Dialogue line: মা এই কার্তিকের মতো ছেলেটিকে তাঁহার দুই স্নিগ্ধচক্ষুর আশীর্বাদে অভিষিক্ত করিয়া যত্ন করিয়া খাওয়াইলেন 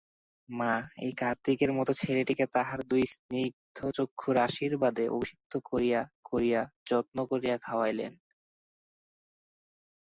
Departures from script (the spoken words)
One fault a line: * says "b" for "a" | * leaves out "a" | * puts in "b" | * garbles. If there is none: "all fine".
* puts in "করিয়া"